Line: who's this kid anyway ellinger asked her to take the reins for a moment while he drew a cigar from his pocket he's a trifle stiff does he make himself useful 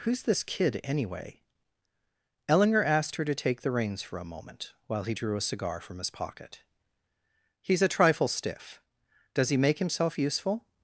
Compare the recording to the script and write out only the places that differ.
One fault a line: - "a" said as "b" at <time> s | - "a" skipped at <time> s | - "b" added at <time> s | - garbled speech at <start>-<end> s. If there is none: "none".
none